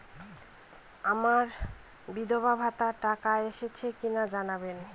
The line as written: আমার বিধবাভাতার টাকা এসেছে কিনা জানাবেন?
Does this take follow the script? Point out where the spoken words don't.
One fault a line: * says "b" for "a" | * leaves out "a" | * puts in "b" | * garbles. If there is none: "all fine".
all fine